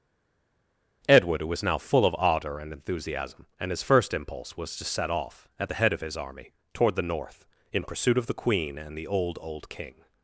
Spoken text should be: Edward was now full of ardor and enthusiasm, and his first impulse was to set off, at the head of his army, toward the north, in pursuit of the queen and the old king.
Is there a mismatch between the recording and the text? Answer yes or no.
yes